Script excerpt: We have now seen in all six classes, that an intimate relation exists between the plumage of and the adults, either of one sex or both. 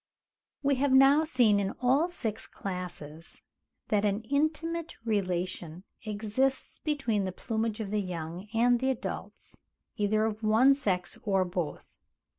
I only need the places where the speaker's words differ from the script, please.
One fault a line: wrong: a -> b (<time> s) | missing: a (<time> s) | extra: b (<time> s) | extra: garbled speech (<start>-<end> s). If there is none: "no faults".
extra: the young (7.9 s)